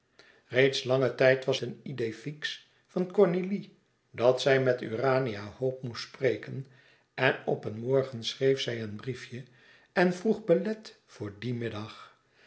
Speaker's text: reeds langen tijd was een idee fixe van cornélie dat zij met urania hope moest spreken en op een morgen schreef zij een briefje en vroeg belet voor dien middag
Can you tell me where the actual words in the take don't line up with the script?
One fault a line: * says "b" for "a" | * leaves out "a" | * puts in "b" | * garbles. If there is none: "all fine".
all fine